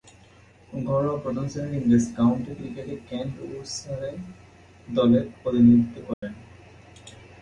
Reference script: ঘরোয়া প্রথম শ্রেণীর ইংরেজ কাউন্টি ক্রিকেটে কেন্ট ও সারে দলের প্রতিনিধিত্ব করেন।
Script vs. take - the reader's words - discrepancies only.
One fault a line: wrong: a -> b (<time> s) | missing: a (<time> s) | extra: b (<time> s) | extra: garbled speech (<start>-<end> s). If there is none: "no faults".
no faults